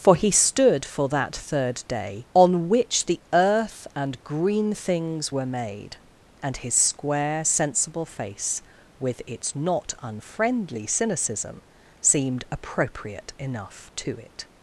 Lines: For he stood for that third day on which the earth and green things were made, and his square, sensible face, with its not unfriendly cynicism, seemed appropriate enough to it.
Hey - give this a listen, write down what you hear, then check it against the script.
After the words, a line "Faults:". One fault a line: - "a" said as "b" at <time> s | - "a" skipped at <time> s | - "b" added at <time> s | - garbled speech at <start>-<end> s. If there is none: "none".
For he stood for that third day on which the earth and green things were made, and his square, sensible face, with its not unfriendly cynicism, seemed appropriate enough to it.
Faults:
none